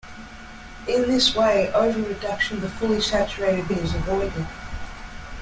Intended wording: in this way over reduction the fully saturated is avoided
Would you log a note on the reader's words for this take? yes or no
no